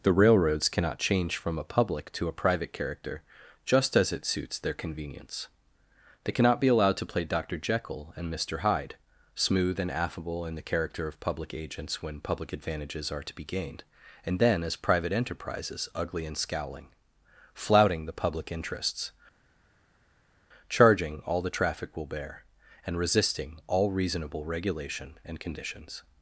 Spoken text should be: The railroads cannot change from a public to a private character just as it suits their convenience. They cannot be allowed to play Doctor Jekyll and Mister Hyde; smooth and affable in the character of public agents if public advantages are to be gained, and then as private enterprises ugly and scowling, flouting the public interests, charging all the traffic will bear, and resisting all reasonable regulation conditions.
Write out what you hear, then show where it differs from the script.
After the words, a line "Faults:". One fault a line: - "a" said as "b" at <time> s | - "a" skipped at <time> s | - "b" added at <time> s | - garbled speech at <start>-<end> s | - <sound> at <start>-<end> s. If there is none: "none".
The railroads cannot change from a public to a private character just as it suits their convenience. They cannot be allowed to play Doctor Jekyll and Mister Hyde; smooth and affable in the character of public agents when public advantages are to be gained, and then as private enterprises ugly and scowling, flouting the public interests, charging all the traffic will bear, and resisting all reasonable regulation and conditions.
Faults:
- "if" said as "when" at 12.0 s
- "and" added at 25.2 s